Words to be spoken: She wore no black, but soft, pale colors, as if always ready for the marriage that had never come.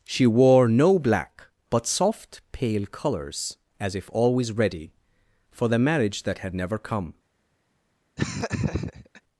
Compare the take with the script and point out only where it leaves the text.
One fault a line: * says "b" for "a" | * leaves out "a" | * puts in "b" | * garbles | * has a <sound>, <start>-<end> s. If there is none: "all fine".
* has a laugh, 8.2-9.2 s